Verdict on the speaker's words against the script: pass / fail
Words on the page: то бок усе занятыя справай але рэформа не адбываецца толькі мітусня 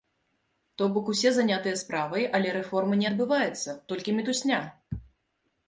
pass